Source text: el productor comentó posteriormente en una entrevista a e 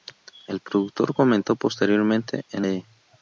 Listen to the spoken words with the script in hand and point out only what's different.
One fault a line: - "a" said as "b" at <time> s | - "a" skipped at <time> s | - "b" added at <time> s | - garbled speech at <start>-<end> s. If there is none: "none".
- "una entrevista a" skipped at 2.7 s